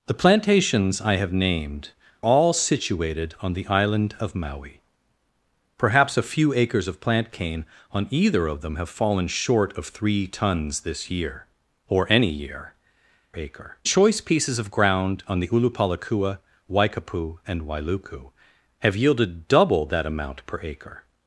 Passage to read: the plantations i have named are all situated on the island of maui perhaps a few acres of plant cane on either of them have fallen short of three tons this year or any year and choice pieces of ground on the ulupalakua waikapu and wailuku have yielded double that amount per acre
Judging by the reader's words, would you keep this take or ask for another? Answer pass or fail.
fail